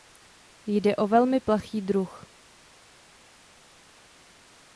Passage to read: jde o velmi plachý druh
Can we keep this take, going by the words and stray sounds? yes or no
yes